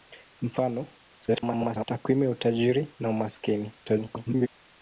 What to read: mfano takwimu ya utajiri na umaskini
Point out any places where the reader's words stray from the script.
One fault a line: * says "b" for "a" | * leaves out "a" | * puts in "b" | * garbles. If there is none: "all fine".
* garbles
* garbles